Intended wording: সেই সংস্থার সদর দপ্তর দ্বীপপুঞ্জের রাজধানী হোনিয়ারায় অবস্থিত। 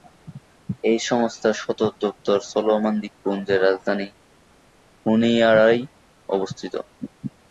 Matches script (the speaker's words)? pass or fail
fail